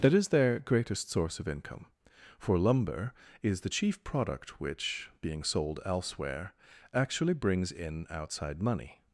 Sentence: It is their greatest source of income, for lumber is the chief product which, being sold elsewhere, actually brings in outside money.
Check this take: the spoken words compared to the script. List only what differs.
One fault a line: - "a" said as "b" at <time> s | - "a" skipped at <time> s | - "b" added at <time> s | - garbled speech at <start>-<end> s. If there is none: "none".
- "It" said as "That" at 0.0 s